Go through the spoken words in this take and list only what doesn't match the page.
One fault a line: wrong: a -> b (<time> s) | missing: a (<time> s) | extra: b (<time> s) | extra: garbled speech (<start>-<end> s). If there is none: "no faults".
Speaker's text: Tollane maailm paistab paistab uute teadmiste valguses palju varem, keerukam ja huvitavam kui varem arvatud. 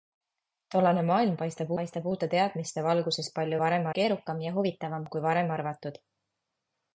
no faults